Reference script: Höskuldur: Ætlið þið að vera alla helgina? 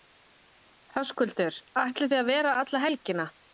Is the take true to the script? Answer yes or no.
yes